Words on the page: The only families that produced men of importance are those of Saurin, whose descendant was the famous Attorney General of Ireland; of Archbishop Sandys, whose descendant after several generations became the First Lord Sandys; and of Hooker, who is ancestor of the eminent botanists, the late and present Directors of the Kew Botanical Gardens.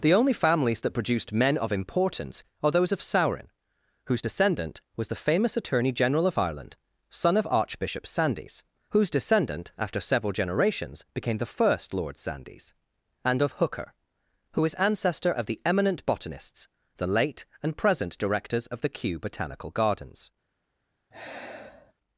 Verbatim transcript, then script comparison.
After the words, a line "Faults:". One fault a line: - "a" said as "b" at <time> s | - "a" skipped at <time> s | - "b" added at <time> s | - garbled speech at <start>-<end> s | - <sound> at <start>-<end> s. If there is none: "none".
The only families that produced men of importance are those of Saurin, whose descendant was the famous Attorney General of Ireland; son of Archbishop Sandys, whose descendant after several generations became the First Lord Sandys; and of Hooker, who is ancestor of the eminent botanists, the late and present Directors of the Kew Botanical Gardens.
Faults:
- "son" added at 7.1 s
- sigh at 21.1-21.9 s